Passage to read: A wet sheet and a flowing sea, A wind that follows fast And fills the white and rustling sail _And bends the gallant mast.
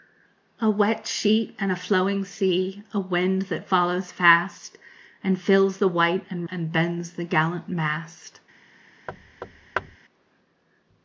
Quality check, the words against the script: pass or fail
fail